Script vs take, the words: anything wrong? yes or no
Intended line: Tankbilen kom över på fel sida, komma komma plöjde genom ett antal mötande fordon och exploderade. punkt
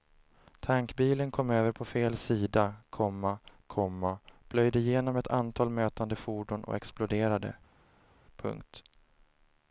no